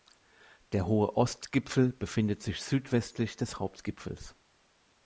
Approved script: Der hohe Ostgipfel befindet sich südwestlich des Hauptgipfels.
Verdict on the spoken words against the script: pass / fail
pass